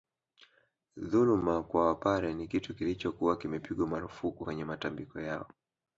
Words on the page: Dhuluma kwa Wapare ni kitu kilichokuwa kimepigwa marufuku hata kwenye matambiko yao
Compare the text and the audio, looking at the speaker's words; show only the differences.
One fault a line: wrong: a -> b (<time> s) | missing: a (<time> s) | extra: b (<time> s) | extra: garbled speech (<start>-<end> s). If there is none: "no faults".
missing: hata (4.4 s)